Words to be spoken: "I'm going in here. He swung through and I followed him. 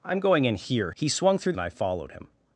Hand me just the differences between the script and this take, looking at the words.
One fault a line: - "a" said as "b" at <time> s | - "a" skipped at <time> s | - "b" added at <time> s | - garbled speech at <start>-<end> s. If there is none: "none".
none